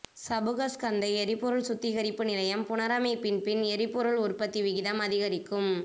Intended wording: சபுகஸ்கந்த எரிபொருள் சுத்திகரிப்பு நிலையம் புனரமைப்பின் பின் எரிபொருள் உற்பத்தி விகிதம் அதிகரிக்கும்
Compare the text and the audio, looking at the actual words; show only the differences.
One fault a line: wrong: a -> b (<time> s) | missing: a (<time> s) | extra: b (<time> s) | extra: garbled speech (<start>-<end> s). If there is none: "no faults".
no faults